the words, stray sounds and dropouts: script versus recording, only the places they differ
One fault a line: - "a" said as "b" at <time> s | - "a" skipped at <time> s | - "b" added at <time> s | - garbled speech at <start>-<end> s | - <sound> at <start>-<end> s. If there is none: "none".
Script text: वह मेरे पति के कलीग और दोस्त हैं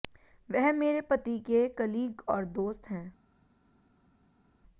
none